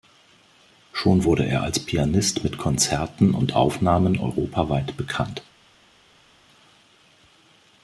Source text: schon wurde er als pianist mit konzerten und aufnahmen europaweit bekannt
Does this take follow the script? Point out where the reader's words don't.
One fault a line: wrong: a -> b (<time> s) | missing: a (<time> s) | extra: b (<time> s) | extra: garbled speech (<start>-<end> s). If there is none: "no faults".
no faults